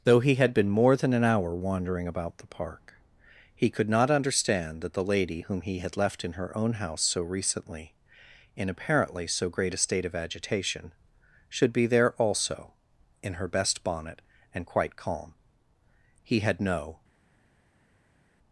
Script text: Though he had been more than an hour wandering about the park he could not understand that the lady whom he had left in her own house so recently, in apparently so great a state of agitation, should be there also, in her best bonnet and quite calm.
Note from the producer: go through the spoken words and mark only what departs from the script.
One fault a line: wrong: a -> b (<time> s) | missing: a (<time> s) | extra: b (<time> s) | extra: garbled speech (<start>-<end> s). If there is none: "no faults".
extra: He had no (16.2 s)